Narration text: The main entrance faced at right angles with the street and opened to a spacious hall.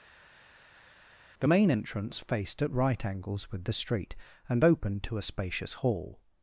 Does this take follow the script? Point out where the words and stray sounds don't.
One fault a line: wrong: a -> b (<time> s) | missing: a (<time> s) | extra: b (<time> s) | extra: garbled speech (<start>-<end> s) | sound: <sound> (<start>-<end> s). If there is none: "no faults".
no faults